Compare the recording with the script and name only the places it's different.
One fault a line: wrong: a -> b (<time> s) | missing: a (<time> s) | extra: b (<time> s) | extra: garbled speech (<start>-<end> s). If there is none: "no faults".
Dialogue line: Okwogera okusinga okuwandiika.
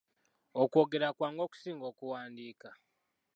extra: kwangu (1.2 s)